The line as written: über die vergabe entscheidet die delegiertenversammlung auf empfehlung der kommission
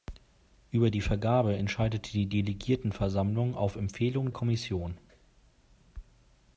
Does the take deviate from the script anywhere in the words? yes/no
yes